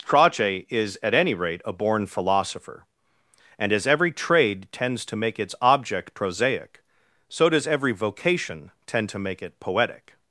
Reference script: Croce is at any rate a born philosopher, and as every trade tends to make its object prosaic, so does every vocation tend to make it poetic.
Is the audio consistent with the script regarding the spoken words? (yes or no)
yes